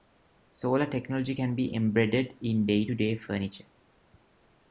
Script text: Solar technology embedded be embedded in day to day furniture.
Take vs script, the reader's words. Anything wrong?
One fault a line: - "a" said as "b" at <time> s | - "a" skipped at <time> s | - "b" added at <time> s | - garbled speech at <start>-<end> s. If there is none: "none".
- "embedded" said as "can" at 1.3 s